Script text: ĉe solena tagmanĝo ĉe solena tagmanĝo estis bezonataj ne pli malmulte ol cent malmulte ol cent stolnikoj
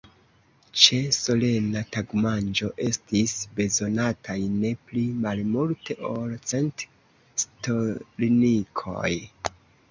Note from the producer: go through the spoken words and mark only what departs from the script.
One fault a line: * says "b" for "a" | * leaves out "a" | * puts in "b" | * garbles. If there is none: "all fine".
* leaves out "ĉe solena tagmanĝo"
* leaves out "malmulte ol cent"